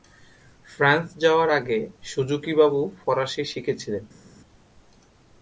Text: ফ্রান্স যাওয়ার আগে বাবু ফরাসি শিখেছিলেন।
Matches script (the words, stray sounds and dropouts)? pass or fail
fail